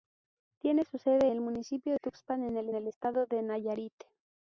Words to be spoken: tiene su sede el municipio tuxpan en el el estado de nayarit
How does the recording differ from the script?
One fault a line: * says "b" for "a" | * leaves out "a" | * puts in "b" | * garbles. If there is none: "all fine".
all fine